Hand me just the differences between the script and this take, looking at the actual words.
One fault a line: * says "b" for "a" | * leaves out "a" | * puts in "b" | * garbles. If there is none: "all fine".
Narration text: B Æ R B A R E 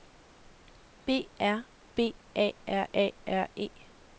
* leaves out "Æ"
* puts in "A R"